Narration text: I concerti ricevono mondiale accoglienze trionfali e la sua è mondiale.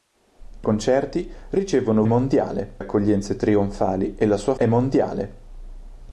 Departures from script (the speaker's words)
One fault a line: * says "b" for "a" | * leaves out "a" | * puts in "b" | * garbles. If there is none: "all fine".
all fine